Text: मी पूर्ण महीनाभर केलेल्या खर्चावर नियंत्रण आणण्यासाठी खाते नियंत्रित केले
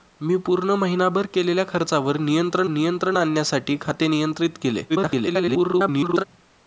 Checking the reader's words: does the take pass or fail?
fail